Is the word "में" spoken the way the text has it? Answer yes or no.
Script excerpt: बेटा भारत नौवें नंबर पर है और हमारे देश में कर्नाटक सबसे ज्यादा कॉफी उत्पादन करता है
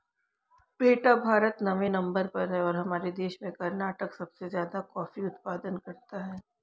yes